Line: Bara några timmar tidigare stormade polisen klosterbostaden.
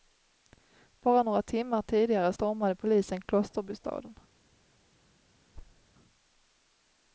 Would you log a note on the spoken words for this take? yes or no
no